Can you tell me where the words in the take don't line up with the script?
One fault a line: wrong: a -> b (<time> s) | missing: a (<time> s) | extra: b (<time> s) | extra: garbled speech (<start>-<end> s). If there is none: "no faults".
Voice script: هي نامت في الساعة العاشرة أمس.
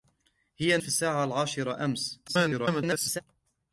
missing: نامت (0.8 s)
extra: garbled speech (2.3-3.2 s)